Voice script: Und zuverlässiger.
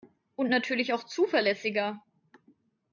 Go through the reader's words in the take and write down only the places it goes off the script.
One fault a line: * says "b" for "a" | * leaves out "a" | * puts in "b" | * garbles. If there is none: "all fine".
* puts in "natürlich auch"